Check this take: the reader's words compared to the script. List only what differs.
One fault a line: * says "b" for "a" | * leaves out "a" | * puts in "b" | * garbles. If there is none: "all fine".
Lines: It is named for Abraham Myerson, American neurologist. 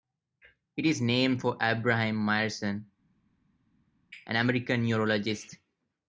* puts in "an"